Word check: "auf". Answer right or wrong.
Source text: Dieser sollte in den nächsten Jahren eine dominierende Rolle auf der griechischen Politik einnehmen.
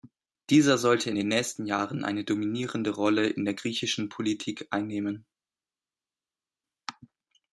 wrong